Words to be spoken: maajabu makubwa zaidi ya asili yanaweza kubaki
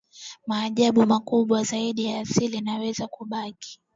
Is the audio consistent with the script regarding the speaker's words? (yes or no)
yes